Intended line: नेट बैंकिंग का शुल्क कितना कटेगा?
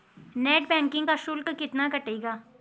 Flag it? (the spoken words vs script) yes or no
no